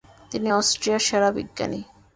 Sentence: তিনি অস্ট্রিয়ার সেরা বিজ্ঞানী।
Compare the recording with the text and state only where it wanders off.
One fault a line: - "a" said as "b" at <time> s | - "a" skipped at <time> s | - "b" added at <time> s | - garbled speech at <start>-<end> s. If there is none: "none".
none